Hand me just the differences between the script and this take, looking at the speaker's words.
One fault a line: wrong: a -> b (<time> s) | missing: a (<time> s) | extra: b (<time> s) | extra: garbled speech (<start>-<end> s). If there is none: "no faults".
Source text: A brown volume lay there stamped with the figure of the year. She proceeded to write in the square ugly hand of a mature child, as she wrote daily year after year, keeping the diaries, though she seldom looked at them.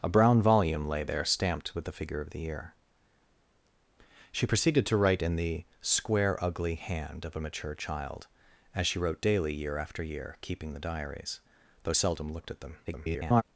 missing: she (11.9 s)
extra: garbled speech (12.8-13.4 s)